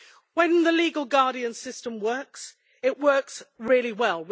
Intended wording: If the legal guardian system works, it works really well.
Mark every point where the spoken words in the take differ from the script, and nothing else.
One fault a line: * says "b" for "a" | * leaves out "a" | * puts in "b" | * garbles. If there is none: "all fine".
* says "When" for "If"